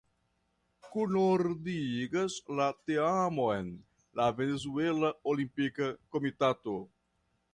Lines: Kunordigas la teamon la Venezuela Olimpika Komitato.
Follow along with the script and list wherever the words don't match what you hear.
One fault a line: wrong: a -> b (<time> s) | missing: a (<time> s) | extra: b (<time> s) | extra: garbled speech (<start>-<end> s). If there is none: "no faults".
no faults